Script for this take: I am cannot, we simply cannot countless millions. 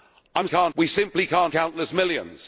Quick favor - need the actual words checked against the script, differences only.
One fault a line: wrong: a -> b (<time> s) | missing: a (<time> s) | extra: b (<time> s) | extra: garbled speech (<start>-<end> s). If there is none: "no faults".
no faults